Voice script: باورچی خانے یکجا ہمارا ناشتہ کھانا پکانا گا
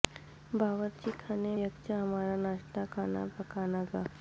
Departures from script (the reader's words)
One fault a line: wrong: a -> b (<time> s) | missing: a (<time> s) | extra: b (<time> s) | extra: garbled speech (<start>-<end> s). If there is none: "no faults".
no faults